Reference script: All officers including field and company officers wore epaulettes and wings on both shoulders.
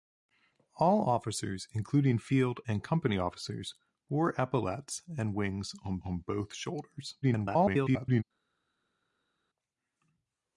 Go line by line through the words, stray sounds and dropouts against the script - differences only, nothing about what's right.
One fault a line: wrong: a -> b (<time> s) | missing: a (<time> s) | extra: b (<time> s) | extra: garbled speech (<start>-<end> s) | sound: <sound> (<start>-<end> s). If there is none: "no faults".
extra: on (6.0 s)
extra: garbled speech (7.2-8.2 s)